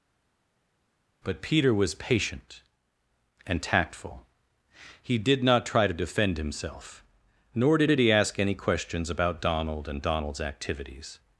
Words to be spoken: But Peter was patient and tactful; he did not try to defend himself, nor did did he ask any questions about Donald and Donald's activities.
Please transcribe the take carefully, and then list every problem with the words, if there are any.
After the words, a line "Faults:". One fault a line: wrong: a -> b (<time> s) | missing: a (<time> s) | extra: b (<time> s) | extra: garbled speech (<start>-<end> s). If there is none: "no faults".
But Peter was patient and tactful; he did not try to defend himself, nor did did he ask any questions about Donald and Donald's activities.
Faults:
no faults